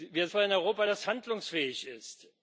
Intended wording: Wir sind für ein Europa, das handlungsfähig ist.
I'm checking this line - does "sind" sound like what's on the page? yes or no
no